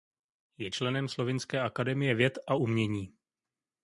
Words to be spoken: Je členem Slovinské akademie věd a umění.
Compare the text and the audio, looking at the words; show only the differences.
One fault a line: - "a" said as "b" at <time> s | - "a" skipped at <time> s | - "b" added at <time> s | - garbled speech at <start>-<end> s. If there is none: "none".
none